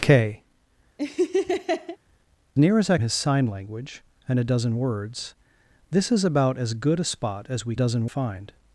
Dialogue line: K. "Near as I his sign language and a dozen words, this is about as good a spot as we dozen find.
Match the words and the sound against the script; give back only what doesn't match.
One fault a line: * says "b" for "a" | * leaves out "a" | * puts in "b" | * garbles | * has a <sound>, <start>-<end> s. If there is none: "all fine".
* has a laugh, 1.0-2.0 s